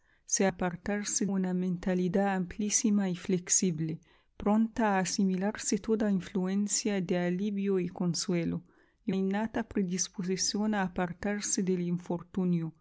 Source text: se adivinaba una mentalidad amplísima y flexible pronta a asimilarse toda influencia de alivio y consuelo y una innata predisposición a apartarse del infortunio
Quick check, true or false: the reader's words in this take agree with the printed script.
false